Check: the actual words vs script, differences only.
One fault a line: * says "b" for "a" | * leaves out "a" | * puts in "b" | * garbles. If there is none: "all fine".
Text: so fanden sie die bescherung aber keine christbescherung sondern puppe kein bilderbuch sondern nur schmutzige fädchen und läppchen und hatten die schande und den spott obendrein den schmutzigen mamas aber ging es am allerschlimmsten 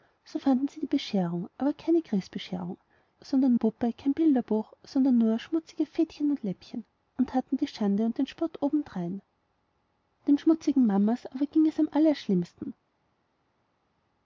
all fine